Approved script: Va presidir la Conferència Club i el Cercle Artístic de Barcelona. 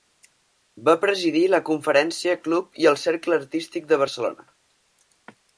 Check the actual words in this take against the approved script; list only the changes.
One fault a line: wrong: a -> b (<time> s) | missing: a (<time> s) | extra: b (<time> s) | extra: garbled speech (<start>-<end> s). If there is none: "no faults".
no faults